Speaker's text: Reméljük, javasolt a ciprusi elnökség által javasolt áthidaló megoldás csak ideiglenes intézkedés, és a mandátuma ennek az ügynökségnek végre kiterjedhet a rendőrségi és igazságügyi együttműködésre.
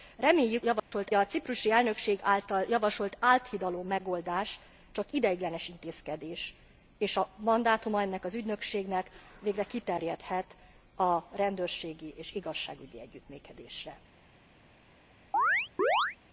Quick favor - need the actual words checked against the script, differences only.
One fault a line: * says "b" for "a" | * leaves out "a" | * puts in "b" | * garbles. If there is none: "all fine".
all fine